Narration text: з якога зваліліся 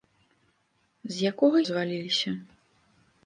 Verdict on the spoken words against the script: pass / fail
pass